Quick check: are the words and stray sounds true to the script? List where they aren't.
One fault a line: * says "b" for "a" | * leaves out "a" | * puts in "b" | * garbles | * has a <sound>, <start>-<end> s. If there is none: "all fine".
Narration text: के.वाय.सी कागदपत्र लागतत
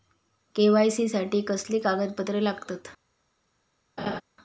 * puts in "साठी कसली"
* has a laugh, 4.0-4.2 s